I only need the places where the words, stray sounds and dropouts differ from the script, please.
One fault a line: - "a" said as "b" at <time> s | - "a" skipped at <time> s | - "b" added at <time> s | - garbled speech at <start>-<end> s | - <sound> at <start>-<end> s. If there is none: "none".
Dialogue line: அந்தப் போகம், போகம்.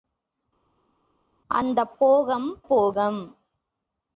none